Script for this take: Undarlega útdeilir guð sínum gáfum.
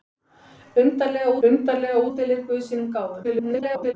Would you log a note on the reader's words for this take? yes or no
yes